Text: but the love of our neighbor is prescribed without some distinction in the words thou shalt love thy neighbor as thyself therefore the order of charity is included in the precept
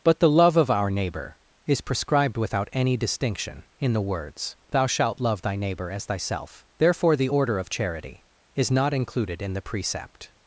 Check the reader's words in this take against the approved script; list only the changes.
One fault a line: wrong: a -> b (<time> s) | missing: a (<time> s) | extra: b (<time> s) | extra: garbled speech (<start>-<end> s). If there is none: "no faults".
wrong: some -> any (2.7 s)
extra: not (8.7 s)